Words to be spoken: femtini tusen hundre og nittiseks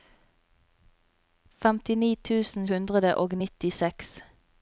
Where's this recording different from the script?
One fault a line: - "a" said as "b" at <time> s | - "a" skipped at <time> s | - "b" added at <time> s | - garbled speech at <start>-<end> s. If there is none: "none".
none